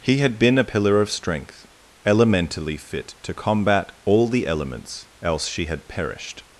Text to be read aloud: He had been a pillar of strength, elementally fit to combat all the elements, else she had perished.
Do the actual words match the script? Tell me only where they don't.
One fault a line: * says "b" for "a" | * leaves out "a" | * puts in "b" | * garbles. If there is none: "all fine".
all fine